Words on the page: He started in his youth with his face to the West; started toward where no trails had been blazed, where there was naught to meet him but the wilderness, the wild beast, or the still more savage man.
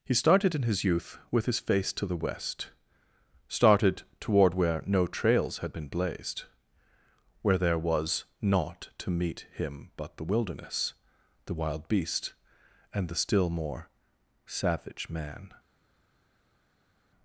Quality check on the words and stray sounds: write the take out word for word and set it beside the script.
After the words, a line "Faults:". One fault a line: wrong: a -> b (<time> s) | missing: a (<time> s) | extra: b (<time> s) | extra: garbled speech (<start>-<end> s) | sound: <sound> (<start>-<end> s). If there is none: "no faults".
He started in his youth with his face to the West; started toward where no trails had been blazed, where there was naught to meet him but the wilderness, the wild beast, and the still more savage man.
Faults:
wrong: or -> and (12.9 s)